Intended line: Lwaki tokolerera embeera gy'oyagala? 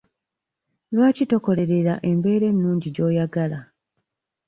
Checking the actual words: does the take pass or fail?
fail